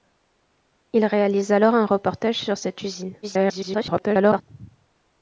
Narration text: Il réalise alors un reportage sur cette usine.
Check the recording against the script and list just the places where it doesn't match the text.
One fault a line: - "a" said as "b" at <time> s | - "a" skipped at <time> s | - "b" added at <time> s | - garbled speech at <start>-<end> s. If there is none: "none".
- garbled speech at 3.2-4.4 s